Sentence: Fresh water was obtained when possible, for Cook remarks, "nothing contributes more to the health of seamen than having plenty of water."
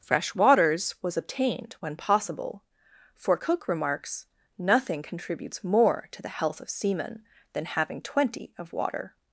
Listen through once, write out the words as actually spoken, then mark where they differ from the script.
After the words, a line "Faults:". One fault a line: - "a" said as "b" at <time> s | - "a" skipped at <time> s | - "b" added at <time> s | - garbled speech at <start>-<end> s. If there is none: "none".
Fresh waters was obtained when possible, for Cook remarks, "nothing contributes more to the health of seamen than having twenty of water."
Faults:
- "water" said as "waters" at 0.3 s
- "plenty" said as "twenty" at 8.0 s